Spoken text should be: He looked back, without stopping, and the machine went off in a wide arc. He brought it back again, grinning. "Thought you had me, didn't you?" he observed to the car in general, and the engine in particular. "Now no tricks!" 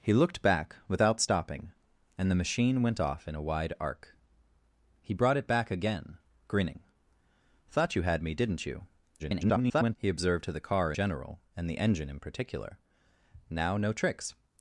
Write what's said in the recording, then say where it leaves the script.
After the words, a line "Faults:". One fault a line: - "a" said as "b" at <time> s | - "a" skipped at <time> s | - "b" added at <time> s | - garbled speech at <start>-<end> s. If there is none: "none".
He looked back, without stopping, and the machine went off in a wide arc. He brought it back again, grinning. "Thought you had me, didn't you?" [garbled] he observed to the car general, and the engine in particular. "Now no tricks!"
Faults:
- garbled speech at 9.2-10.0 s
- "in" skipped at 10.9 s